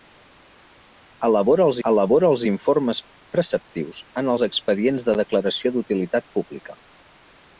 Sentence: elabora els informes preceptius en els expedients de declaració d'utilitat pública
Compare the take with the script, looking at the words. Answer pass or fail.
fail